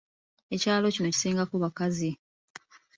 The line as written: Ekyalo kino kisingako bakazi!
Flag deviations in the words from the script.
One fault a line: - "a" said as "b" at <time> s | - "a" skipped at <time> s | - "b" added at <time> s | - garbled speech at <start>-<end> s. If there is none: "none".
none